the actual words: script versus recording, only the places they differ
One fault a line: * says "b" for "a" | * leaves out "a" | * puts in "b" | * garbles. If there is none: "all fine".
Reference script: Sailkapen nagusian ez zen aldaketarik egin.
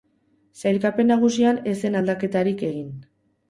all fine